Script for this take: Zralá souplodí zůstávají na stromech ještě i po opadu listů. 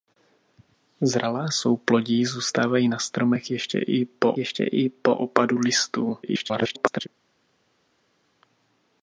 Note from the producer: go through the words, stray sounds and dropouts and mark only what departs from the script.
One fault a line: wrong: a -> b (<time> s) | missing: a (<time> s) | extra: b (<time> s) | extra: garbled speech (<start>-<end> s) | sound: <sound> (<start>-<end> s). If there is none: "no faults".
extra: ještě i po (4.4 s)
extra: garbled speech (6.2-7.1 s)